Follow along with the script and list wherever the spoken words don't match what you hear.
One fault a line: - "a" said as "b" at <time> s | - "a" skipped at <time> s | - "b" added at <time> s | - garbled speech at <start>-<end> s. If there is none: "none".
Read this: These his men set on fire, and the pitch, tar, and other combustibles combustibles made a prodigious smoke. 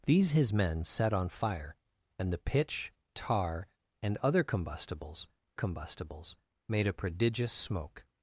none